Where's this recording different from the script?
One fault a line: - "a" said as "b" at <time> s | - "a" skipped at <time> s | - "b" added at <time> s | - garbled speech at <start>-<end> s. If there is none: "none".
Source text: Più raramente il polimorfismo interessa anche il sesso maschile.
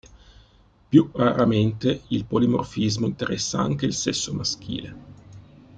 none